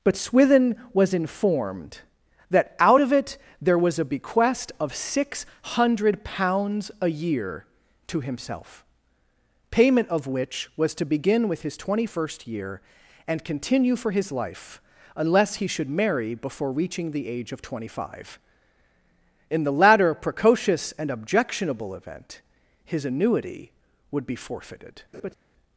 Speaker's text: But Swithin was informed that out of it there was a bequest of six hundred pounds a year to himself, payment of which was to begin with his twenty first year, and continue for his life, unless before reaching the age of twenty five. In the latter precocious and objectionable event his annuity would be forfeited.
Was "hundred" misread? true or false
false